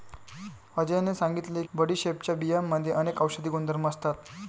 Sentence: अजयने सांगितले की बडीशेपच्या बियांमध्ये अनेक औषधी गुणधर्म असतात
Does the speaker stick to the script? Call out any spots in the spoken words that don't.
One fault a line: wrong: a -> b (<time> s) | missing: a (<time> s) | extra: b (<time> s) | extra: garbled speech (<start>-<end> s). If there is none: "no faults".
missing: की (1.6 s)